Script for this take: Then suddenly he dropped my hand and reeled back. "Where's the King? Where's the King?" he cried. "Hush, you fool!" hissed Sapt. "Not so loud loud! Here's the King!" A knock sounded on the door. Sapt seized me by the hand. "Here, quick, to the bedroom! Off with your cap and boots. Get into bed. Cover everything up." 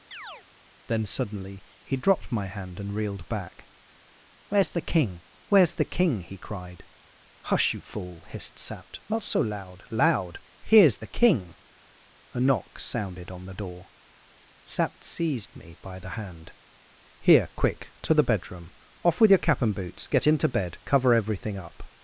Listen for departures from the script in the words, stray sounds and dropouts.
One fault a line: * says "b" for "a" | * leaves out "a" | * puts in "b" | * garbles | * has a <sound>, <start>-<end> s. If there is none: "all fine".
* has a chirp, 0.1-0.4 s